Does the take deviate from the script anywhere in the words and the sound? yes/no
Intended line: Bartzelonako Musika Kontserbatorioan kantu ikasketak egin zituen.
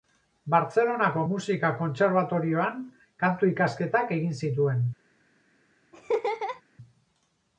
yes